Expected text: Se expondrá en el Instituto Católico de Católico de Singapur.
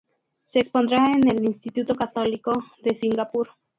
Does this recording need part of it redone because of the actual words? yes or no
yes